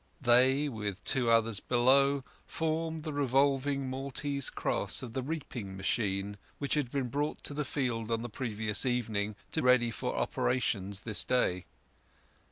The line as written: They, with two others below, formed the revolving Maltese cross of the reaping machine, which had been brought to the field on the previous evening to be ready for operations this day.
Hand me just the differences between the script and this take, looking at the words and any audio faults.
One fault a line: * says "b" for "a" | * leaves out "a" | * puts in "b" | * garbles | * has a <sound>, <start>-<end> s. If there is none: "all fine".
* leaves out "be"